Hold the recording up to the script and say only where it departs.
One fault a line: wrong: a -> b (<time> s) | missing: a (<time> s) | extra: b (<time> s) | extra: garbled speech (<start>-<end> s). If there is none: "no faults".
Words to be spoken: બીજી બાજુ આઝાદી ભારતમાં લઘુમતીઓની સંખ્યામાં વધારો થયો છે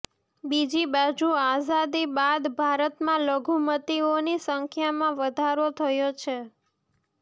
extra: બાદ (2.1 s)